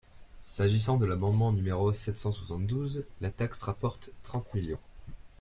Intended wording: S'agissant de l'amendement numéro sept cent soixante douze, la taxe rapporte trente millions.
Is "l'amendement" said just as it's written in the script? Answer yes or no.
yes